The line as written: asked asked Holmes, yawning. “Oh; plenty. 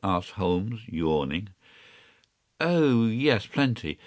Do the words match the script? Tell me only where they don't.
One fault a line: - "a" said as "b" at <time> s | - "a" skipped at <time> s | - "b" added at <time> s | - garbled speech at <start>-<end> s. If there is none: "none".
- "asked" skipped at 0.3 s
- "yes" added at 3.0 s